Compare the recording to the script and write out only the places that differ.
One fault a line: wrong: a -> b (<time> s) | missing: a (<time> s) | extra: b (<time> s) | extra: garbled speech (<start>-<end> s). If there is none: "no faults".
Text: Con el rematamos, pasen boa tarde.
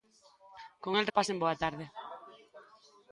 missing: rematamos (1.1 s)